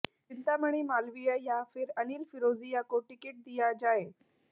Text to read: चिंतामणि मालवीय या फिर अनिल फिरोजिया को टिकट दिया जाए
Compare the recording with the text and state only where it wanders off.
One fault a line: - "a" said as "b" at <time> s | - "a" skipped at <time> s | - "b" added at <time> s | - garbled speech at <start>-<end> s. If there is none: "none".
none